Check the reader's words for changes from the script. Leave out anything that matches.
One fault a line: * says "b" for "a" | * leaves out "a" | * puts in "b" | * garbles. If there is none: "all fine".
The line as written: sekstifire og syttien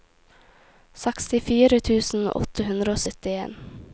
* puts in "tusen åtte hundre"